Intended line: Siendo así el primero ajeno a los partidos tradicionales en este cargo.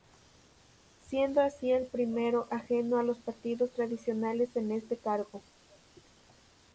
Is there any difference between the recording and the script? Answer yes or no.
no